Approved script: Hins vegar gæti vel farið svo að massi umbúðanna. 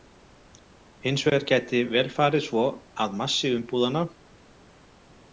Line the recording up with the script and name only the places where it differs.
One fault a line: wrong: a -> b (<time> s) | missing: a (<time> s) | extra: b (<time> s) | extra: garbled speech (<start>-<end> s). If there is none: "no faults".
no faults